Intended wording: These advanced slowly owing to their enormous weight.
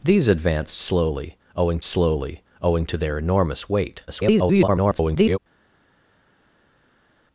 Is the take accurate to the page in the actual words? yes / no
no